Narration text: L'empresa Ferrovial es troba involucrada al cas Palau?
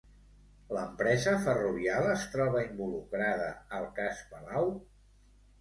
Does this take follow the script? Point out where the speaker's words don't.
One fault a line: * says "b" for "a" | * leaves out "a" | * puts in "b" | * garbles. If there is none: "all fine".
all fine